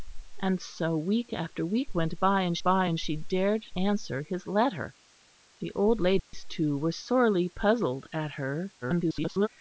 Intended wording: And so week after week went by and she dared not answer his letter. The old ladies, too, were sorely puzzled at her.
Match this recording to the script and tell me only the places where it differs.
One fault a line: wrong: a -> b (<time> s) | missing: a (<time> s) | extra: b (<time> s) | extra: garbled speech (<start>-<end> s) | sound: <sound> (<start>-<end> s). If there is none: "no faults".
extra: by and (2.6 s)
missing: not (3.6 s)
sound: dropout (6.2-6.3 s)
extra: garbled speech (8.8-9.5 s)